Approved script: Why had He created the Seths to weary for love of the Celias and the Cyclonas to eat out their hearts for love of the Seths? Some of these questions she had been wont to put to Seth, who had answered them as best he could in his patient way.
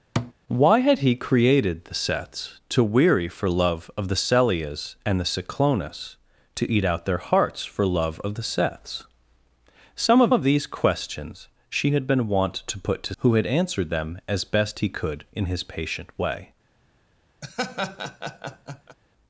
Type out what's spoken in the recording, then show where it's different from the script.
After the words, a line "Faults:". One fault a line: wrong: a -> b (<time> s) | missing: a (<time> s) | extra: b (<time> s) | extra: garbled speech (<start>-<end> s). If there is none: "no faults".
Why had He created the Seths to weary for love of the Celias and the Cyclonas to eat out their hearts for love of the Seths? Some of of these questions she had been wont to put to Who had answered them as best he could in his patient way.
Faults:
extra: of (10.3 s)
missing: Seth (13.1 s)